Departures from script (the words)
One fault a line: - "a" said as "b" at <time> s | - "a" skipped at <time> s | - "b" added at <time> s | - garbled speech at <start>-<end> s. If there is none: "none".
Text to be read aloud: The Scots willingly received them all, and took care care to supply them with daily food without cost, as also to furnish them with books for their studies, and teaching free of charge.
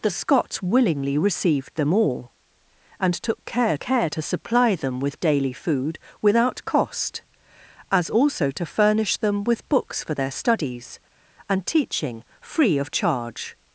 none